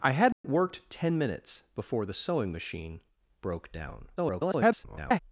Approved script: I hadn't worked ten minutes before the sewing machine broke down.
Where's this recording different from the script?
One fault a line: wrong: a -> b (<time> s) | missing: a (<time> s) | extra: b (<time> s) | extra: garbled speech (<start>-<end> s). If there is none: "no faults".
extra: garbled speech (4.2-5.2 s)